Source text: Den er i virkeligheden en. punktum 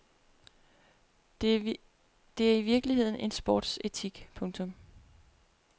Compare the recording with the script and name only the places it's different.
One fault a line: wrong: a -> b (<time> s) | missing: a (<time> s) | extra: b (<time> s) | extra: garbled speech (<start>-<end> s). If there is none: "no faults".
wrong: Den -> Det (1.4 s)
extra: sportsetik (3.3 s)